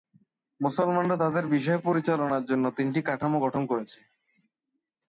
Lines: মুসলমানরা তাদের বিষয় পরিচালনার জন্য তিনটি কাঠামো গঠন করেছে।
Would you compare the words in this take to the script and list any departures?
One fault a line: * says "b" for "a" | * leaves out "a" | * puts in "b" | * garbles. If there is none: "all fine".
all fine